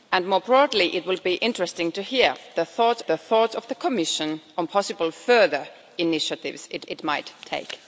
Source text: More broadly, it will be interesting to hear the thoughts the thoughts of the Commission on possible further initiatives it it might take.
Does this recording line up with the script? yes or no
yes